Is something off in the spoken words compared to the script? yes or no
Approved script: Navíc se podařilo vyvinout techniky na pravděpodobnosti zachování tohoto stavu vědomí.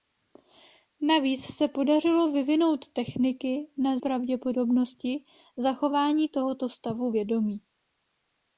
no